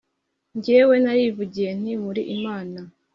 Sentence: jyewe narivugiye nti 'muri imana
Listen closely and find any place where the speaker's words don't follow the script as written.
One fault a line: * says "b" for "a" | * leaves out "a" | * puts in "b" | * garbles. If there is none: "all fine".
all fine